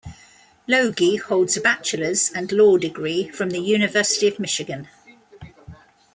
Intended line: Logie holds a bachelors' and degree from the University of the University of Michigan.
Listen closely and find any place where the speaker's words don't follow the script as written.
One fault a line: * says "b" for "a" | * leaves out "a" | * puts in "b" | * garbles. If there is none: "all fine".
* puts in "law"
* leaves out "the University of"